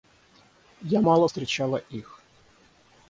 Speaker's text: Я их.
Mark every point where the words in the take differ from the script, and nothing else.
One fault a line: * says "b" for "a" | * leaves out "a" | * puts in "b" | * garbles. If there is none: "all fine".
* puts in "мало встречала"